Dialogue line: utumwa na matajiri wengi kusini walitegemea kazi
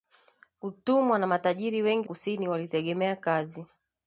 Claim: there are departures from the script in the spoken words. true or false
false